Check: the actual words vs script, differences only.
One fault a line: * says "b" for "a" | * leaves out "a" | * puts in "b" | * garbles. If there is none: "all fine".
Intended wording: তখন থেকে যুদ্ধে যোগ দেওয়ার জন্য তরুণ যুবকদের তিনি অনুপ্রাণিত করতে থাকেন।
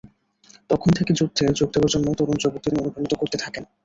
* leaves out "তিনি"